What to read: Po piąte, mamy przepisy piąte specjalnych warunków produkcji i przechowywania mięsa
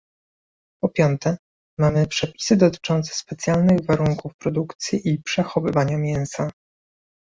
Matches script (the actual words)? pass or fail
fail